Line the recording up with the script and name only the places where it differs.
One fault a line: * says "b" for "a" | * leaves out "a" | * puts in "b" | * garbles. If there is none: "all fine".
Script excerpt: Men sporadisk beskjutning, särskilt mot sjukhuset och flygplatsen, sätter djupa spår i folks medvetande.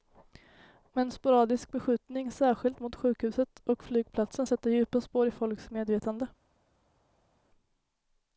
all fine